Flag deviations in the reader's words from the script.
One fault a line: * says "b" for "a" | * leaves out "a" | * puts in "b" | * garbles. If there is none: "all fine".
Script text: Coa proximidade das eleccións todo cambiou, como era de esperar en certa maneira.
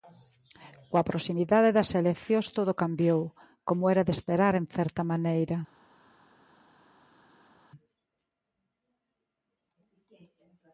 all fine